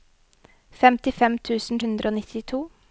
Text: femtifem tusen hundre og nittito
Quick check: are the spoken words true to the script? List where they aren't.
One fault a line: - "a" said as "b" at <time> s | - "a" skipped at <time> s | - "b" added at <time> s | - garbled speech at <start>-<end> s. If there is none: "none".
none